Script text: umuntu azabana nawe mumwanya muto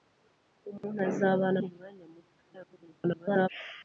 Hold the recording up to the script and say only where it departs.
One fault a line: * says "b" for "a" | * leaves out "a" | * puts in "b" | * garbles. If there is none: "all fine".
* leaves out "nawe"
* garbles